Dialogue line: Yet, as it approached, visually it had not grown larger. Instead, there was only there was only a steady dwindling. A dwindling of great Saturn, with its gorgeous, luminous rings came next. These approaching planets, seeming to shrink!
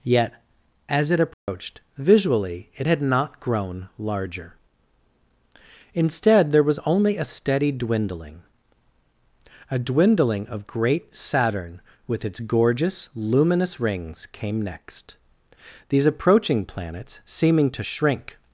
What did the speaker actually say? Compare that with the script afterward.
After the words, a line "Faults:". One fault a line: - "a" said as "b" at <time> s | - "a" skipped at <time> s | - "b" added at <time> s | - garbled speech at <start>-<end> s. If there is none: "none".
Yet, as it approached, visually it had not grown larger. Instead, there was only a steady dwindling. A dwindling of great Saturn, with its gorgeous, luminous rings came next. These approaching planets, seeming to shrink!
Faults:
- "there was only" skipped at 7.2 s